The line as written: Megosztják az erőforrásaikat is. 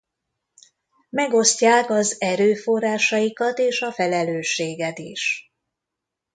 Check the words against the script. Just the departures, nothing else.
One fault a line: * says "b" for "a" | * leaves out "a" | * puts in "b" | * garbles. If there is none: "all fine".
* puts in "és a felelősséget"